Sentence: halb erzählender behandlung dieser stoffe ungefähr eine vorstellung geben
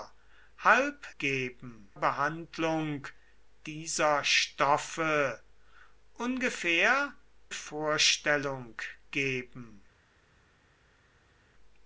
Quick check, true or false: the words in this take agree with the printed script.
false